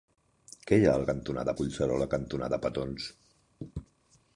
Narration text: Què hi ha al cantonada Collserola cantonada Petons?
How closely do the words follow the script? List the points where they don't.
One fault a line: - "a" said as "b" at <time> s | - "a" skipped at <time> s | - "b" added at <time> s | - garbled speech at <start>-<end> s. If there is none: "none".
none